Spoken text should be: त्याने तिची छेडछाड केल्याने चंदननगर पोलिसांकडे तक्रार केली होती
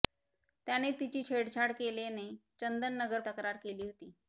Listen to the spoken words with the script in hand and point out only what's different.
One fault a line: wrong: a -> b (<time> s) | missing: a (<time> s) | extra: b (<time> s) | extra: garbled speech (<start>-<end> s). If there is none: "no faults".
missing: पोलिसांकडे (3.2 s)